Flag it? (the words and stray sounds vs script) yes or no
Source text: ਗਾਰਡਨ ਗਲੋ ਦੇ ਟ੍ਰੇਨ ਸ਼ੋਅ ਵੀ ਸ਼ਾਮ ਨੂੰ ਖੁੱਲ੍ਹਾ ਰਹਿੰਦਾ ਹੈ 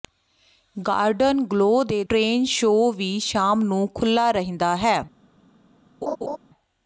yes